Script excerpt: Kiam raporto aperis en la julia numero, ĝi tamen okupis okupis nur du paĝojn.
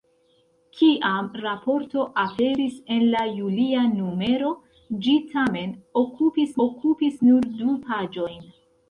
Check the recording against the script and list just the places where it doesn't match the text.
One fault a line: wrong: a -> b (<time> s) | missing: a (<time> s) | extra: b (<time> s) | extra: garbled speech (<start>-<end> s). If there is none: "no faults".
no faults